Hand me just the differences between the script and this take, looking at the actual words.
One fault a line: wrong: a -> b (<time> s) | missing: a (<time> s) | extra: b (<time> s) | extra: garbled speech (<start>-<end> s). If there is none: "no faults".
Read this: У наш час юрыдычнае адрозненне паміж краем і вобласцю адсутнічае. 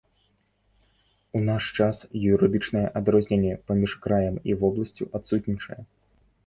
no faults